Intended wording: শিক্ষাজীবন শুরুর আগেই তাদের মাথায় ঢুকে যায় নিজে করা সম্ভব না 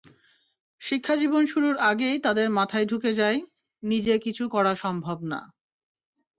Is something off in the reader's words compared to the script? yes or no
yes